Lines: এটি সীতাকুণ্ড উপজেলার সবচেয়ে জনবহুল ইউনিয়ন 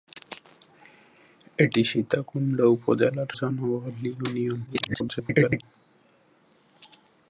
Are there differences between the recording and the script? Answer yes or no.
yes